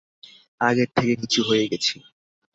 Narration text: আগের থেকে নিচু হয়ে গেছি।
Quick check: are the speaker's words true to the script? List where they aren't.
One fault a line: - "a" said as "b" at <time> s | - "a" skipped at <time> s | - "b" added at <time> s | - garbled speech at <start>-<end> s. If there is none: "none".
none